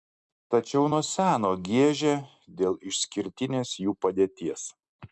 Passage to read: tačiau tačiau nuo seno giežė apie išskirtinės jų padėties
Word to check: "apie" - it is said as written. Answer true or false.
false